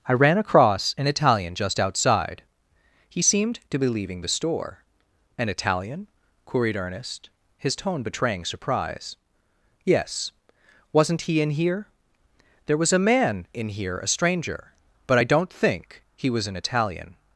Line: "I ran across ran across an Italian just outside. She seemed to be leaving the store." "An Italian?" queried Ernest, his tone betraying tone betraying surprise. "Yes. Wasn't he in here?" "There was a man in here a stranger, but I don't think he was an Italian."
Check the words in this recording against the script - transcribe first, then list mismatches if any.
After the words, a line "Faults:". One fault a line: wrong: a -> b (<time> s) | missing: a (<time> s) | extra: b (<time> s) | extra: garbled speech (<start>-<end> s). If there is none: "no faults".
"I ran across an Italian just outside. He seemed to be leaving the store." "An Italian?" queried Ernest, his tone betraying surprise. "Yes. Wasn't he in here?" "There was a man in here a stranger, but I don't think he was an Italian."
Faults:
missing: ran across (0.9 s)
wrong: She -> He (3.1 s)
missing: tone betraying (8.4 s)